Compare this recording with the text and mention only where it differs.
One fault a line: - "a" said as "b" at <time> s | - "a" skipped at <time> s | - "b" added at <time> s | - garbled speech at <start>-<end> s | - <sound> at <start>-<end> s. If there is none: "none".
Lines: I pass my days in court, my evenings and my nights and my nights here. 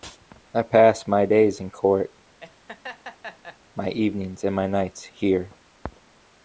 - laugh at 2.4-3.6 s
- "and my nights" skipped at 5.0 s